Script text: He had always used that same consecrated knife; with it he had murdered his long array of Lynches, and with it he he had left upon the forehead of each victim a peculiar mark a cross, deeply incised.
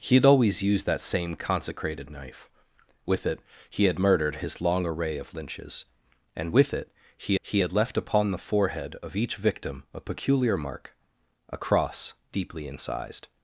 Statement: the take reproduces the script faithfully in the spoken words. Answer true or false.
true